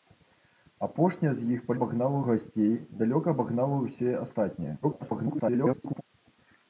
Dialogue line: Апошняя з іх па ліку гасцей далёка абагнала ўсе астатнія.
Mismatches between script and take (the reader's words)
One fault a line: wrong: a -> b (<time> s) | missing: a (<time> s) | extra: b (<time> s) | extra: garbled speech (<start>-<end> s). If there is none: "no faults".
wrong: ліку -> абагнала (1.8 s)
extra: garbled speech (4.8-6.0 s)